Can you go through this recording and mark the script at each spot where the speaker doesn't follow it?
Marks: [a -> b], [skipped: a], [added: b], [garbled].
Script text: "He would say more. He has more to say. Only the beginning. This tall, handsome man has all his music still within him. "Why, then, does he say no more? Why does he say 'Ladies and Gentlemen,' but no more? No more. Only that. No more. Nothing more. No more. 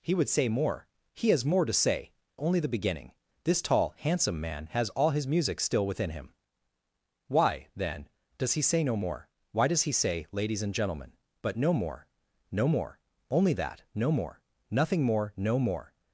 "He would say more. He has more to say. Only the beginning. This tall, handsome man has all his music still within him. "Why, then, does he say no more? Why does he say 'Ladies and Gentlemen,' but no more? No more. Only that. No more. Nothing more. No more.